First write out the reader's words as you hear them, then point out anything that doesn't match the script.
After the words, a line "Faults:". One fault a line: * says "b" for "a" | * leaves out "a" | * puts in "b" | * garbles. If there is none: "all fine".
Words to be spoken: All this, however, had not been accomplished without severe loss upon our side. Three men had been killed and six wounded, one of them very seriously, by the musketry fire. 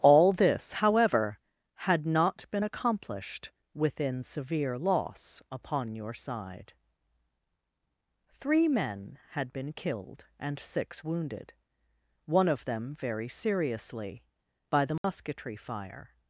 All this, however, had not been accomplished within severe loss upon your side. Three men had been killed and six wounded, one of them very seriously, by the musketry fire.
Faults:
* says "within" for "without"
* says "your" for "our"